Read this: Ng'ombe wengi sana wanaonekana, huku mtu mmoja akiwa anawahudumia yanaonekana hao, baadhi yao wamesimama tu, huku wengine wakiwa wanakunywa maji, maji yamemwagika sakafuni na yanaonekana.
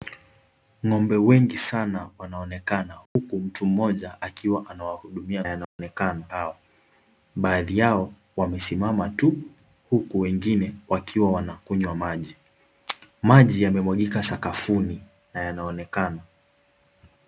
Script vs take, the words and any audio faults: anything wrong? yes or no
yes